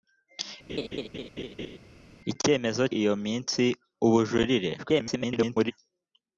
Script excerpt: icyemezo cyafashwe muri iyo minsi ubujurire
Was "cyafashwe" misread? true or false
true